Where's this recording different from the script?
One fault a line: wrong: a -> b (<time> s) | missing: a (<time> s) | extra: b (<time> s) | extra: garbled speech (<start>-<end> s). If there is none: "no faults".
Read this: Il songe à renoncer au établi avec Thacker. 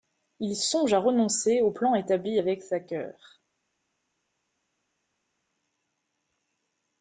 extra: plan (1.7 s)